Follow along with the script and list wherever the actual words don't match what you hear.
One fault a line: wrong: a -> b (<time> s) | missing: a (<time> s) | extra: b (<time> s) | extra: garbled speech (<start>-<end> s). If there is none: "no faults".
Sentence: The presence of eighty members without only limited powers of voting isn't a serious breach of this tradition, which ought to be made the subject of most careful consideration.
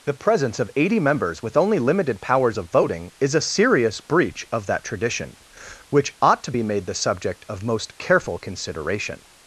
wrong: without -> with (1.4 s)
wrong: isn't -> is (3.2 s)
wrong: this -> that (4.7 s)